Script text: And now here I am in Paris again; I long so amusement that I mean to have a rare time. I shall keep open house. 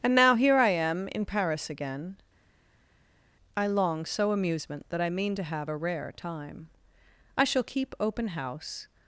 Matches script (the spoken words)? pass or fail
pass